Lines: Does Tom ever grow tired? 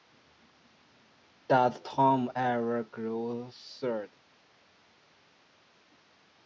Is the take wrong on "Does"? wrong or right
right